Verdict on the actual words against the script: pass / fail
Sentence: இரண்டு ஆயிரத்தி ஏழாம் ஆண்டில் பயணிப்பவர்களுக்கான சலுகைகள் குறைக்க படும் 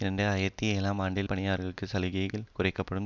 pass